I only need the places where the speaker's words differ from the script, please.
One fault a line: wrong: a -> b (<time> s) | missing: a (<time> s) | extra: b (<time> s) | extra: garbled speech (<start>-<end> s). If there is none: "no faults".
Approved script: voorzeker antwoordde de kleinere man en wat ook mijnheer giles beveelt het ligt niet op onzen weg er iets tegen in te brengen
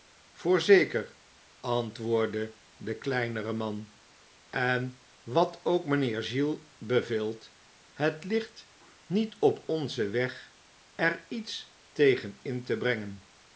no faults